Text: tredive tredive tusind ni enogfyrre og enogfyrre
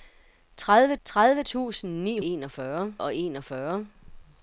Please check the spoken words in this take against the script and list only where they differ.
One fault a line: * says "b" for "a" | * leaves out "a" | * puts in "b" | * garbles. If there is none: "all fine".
all fine